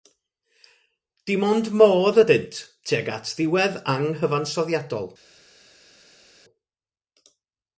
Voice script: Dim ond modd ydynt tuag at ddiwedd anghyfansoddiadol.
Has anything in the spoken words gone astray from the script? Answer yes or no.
no